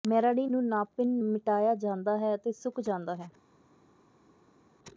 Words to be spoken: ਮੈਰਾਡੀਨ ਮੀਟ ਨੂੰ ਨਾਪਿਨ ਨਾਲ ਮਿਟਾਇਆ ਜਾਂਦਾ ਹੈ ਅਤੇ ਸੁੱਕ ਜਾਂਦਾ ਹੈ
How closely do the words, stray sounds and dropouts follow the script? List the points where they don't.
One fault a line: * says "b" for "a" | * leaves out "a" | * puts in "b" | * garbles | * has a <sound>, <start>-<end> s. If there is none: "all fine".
* leaves out "ਮੀਟ"
* leaves out "ਨਾਲ"